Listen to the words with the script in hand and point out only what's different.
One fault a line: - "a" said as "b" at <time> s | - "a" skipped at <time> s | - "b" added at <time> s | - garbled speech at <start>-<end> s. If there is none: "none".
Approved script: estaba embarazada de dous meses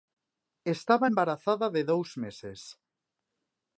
none